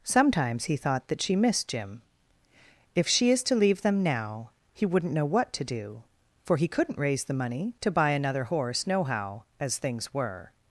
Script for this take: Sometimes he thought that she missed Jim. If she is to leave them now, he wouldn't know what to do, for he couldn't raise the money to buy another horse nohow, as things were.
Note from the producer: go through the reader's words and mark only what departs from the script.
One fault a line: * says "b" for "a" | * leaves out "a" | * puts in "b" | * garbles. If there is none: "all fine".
all fine